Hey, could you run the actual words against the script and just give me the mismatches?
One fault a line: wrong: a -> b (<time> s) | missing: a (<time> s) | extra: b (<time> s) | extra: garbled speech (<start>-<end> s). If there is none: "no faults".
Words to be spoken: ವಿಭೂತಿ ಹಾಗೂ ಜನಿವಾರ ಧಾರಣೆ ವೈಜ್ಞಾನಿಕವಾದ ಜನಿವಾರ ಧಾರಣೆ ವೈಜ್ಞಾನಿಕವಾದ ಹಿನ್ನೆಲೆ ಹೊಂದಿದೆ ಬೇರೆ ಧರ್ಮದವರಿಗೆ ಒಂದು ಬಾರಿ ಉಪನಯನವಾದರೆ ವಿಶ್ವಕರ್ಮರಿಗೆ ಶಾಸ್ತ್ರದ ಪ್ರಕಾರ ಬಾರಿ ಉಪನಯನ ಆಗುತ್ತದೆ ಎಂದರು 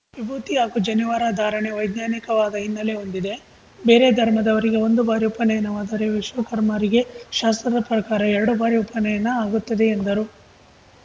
missing: ಜನಿವಾರ ಧಾರಣೆ ವೈಜ್ಞಾನಿಕವಾದ (2.5 s)
extra: ಎರಡು (8.3 s)